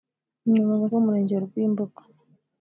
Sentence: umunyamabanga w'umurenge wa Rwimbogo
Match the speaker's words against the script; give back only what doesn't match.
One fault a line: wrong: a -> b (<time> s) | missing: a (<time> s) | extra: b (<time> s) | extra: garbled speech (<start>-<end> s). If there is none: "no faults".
no faults